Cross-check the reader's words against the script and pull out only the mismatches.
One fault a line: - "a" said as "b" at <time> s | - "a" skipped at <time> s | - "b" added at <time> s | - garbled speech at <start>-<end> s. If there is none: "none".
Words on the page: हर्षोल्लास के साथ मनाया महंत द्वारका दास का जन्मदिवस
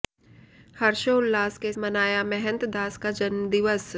- "साथ" skipped at 1.7 s
- "द्वारका" skipped at 2.6 s